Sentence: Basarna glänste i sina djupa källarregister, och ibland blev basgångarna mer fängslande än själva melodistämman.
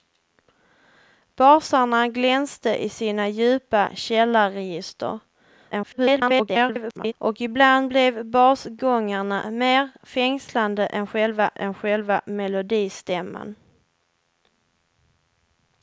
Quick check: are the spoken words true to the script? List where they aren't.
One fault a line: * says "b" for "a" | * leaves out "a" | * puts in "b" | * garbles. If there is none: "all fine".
* garbles
* puts in "än själva"